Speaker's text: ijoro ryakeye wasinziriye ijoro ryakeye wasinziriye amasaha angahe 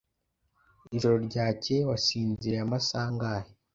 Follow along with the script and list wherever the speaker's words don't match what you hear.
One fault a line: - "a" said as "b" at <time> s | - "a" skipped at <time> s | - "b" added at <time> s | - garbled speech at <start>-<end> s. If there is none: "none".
- "ijoro ryakeye wasinziriye" skipped at 2.6 s